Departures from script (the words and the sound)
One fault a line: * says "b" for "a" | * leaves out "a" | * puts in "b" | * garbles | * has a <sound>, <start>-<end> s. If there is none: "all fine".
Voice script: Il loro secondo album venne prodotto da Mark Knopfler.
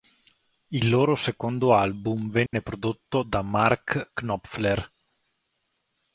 * has a dropout, 2.5-2.5 s